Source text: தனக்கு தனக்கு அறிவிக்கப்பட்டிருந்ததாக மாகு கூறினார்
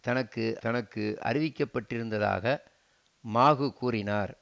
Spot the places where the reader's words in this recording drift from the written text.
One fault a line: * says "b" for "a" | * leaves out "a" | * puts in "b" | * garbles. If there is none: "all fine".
all fine